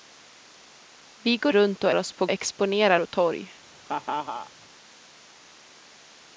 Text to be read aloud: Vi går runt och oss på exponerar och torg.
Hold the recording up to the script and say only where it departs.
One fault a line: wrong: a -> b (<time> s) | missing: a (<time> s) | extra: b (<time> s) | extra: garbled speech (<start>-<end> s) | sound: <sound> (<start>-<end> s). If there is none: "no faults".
sound: laugh (3.9-4.5 s)